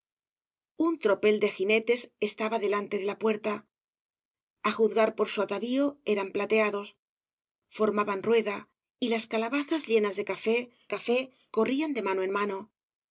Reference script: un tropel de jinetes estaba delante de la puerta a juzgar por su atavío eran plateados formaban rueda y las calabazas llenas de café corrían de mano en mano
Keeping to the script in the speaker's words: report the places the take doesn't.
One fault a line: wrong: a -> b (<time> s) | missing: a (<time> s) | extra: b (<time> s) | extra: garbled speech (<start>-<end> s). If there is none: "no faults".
extra: café (10.9 s)